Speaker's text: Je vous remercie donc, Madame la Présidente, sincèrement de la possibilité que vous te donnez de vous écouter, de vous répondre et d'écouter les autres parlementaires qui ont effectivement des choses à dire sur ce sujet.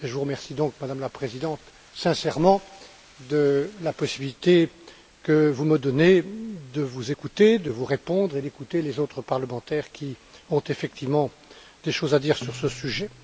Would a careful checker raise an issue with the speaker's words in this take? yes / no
yes